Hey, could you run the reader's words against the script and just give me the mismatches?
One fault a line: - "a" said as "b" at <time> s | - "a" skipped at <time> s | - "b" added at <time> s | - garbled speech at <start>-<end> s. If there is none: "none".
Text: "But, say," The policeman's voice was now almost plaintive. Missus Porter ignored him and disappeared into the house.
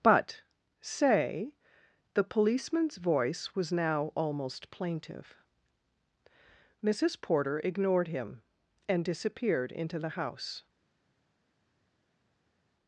none